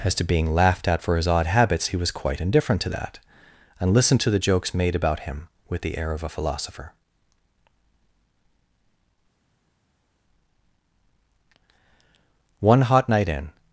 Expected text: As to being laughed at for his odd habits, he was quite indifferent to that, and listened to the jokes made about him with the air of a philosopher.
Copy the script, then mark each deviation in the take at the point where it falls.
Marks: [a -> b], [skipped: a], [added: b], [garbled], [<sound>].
As to being laughed at for his odd habits, he was quite indifferent to that, and listened to the jokes made about him with the air of a philosopher. [added: One hot night in]